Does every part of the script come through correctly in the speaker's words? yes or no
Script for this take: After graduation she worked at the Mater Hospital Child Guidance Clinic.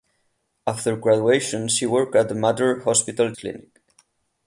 no